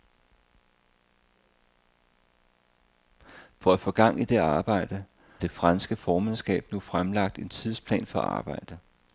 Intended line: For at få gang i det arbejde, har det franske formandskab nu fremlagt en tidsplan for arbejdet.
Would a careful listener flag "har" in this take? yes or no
yes